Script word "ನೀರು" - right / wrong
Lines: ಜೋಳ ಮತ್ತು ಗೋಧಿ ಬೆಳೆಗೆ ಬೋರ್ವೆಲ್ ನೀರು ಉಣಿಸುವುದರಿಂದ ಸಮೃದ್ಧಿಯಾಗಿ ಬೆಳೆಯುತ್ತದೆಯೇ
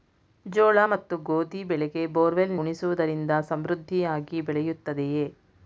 wrong